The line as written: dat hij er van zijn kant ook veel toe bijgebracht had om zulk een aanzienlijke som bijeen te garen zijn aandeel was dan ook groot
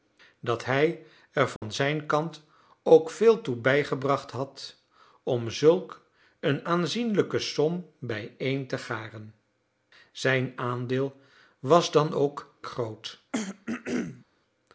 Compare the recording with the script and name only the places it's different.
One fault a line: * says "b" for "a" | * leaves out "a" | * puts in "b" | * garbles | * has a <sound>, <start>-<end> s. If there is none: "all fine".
* has a dropout, 1.6-1.6 s
* has a throat clearing, 13.3-14.2 s